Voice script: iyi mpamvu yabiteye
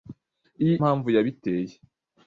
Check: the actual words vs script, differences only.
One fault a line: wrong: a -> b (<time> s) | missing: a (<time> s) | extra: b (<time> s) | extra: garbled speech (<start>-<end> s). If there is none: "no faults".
no faults